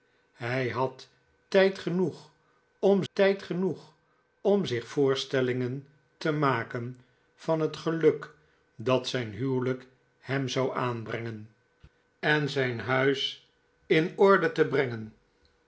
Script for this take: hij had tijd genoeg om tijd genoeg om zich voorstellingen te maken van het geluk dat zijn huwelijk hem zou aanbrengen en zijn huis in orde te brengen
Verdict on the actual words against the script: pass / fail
pass